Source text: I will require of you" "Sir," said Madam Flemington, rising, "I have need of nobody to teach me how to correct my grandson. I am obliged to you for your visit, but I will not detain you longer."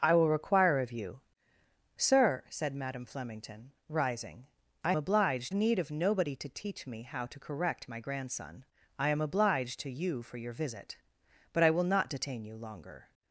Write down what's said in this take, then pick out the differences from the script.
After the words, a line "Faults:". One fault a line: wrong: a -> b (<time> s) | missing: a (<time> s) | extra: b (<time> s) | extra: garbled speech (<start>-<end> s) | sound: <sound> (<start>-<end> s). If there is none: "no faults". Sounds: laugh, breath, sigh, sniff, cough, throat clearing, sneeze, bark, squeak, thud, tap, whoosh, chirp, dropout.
I will require of you" "Sir," said Madam Flemington, rising, "I obliged need of nobody to teach me how to correct my grandson. I am obliged to you for your visit, but I will not detain you longer."
Faults:
wrong: have -> obliged (5.0 s)